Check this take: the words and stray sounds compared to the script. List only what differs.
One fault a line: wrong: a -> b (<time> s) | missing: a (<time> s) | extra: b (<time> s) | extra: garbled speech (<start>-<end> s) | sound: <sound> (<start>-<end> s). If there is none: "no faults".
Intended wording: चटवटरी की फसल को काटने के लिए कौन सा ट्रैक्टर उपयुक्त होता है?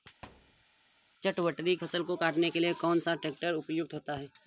sound: thud (0.2-0.7 s)
missing: की (1.7 s)